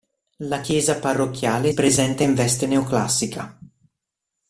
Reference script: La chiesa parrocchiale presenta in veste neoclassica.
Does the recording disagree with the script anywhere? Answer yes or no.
no